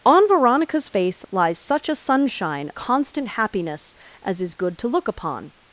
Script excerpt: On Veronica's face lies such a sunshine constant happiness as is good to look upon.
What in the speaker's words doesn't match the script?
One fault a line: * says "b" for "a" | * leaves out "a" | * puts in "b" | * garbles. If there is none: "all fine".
all fine